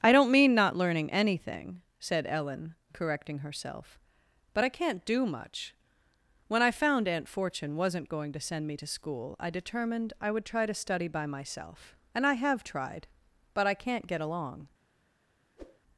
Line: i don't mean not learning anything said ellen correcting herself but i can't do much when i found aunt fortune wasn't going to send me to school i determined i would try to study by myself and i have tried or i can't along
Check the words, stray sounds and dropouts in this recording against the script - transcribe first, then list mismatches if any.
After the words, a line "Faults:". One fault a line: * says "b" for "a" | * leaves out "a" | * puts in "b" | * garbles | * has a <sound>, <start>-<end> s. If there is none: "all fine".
i don't mean not learning anything said ellen correcting herself but i can't do much when i found aunt fortune wasn't going to send me to school i determined i would try to study by myself and i have tried but i can't get along
Faults:
* says "but" for "or"
* puts in "get"
* has a whoosh, 15.6-15.8 s